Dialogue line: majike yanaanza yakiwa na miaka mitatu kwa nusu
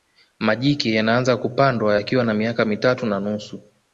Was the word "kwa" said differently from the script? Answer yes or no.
yes